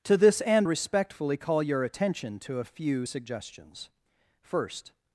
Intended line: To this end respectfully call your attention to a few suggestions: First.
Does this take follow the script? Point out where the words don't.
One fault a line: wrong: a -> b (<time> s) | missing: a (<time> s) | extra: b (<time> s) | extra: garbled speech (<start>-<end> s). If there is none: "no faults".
no faults